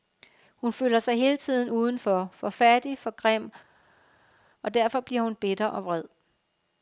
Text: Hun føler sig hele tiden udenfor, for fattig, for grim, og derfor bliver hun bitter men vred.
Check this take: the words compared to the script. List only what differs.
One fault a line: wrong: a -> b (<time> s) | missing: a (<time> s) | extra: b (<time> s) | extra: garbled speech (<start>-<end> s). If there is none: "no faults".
wrong: men -> og (5.7 s)